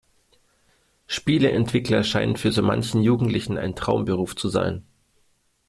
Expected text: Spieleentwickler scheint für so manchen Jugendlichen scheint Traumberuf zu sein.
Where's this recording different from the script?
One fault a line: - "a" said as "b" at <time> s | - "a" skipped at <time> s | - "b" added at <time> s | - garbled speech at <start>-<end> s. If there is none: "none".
- "scheint" said as "ein" at 3.6 s